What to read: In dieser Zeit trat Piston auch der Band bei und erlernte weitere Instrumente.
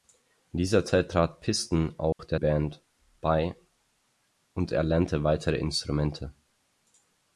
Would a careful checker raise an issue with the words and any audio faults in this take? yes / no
yes